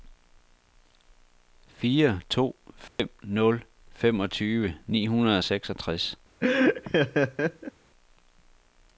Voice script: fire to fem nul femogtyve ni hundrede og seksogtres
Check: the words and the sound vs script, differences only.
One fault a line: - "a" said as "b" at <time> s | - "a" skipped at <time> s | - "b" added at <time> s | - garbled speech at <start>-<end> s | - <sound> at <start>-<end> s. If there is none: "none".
- dropout at 2.9-3.0 s
- laugh at 6.4-7.7 s